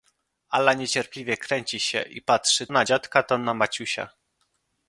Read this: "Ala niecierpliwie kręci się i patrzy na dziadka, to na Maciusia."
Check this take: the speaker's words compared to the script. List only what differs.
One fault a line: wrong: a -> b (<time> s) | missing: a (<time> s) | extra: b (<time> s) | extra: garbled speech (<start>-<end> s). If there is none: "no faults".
no faults